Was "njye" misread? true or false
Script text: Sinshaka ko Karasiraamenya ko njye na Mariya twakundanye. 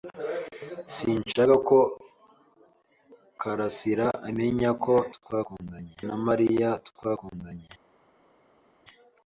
true